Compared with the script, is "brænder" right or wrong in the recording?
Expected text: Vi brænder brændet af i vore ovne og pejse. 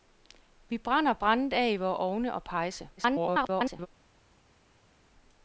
right